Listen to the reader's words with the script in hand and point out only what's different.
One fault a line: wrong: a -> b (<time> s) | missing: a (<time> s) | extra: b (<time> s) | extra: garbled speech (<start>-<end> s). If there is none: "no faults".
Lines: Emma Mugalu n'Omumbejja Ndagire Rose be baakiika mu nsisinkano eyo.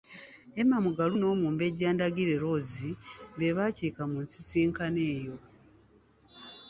no faults